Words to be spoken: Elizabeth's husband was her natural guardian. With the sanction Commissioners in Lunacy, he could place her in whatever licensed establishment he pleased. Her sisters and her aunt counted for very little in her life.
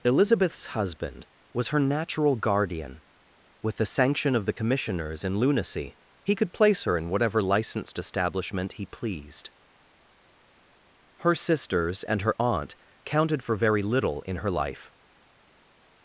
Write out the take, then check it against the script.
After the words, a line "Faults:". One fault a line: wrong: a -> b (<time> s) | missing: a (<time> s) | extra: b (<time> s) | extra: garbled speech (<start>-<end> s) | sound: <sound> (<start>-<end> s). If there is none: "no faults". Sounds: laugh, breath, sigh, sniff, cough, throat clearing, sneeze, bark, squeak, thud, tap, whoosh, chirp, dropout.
Elizabeth's husband was her natural guardian. With the sanction of the Commissioners in Lunacy, he could place her in whatever licensed establishment he pleased. Her sisters and her aunt counted for very little in her life.
Faults:
extra: of the (4.3 s)